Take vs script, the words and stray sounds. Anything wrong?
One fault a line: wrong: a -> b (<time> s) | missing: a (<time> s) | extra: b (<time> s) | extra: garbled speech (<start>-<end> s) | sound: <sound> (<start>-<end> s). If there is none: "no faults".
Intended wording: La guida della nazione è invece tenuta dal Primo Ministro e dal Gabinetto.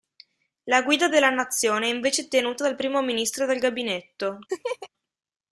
sound: laugh (4.5-4.9 s)